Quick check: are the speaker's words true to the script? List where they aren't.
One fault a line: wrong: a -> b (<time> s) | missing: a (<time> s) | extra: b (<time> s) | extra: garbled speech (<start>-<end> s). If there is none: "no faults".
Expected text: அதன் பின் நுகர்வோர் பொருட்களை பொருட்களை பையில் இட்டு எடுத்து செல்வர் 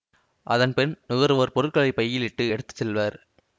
missing: பொருட்களை (1.9 s)